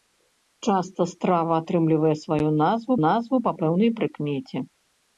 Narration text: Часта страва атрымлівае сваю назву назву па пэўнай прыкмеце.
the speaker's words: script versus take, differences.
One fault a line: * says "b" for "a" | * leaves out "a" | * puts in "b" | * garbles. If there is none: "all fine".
all fine